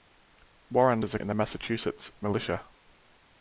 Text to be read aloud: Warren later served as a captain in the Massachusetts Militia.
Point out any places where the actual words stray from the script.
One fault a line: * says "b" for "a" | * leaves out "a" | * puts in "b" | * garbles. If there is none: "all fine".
* leaves out "later served"
* leaves out "captain"